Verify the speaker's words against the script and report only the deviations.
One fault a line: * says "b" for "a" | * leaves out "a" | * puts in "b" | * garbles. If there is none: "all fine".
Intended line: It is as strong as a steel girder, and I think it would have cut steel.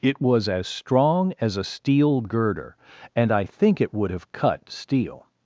* says "was" for "is"